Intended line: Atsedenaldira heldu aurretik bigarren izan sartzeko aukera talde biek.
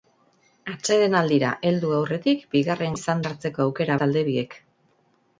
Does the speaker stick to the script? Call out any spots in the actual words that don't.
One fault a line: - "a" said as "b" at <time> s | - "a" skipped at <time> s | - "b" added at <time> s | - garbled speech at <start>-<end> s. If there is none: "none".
none